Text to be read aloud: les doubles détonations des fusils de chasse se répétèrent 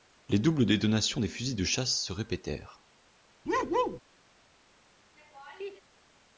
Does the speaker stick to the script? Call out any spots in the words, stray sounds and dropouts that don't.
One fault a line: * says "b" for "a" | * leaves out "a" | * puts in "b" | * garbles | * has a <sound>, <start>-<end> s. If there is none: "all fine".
* has a bark, 3.5-4.0 s
* has a laugh, 5.2-5.8 s